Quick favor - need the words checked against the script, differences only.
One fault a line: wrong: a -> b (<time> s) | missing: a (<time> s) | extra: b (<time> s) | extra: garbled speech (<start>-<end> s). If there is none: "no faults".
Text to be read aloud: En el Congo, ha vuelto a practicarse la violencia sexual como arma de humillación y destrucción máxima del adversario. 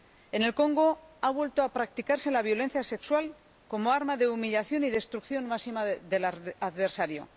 no faults